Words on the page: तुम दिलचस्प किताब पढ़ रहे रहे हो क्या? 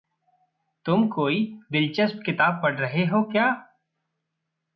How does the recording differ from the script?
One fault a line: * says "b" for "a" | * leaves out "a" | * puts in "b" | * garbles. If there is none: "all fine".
* puts in "कोई"
* leaves out "रहे"